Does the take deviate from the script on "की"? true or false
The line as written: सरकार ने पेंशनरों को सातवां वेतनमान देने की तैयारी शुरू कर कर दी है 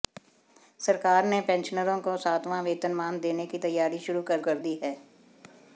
false